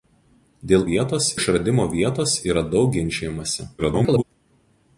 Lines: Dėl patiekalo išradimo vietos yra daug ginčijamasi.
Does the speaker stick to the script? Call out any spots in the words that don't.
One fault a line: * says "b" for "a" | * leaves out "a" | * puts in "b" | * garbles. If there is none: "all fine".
* says "vietos" for "patiekalo"
* garbles